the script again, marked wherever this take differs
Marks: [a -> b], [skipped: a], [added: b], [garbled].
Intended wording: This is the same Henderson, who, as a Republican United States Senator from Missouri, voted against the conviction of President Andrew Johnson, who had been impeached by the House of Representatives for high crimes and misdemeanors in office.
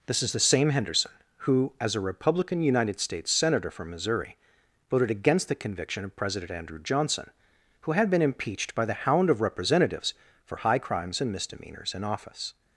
This is the same Henderson, who, as a Republican United States Senator from Missouri, voted against the conviction of President Andrew Johnson, who had been impeached by the [House -> Hound] of Representatives for high crimes and misdemeanors in office.